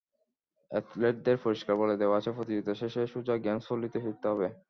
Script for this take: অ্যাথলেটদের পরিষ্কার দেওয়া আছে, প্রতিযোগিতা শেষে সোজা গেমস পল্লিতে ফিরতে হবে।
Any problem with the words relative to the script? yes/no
yes